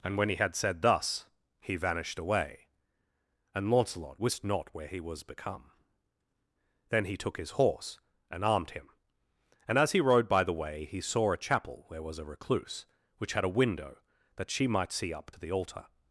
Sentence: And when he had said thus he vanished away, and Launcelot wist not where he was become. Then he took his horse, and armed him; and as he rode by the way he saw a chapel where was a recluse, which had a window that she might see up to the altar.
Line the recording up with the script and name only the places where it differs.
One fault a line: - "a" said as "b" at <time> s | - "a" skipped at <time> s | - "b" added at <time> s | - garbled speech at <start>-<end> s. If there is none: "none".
none